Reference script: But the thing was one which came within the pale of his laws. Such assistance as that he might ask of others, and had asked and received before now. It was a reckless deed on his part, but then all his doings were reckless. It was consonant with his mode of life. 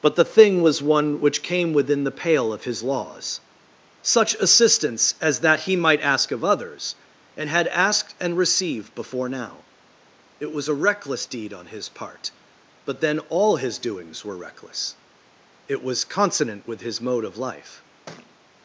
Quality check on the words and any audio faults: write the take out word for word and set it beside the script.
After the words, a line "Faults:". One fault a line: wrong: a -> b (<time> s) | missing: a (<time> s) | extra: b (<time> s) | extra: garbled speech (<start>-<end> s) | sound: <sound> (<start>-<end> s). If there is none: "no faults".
But the thing was one which came within the pale of his laws. Such assistance as that he might ask of others, and had asked and received before now. It was a reckless deed on his part, but then all his doings were reckless. It was consonant with his mode of life.
Faults:
sound: thud (18.1-18.4 s)